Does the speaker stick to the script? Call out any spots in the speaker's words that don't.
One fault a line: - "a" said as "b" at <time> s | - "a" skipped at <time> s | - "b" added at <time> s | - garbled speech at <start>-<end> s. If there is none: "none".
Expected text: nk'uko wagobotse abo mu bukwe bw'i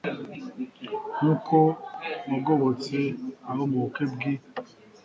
none